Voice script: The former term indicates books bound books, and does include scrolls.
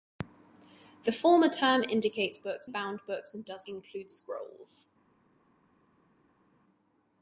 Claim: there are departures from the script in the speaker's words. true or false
false